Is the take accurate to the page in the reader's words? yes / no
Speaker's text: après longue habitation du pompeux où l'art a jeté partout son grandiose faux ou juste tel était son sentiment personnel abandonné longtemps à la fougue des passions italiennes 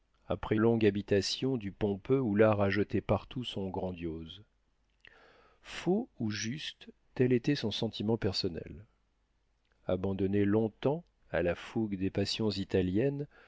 yes